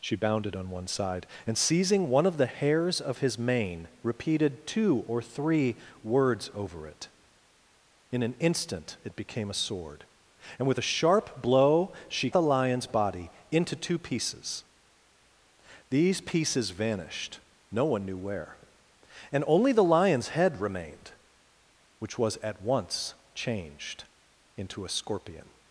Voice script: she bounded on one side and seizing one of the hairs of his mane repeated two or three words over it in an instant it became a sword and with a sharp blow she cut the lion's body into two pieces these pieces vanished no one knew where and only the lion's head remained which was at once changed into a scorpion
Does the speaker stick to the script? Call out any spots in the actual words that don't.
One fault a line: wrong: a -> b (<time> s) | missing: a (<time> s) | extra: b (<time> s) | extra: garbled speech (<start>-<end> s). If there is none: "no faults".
missing: cut (12.3 s)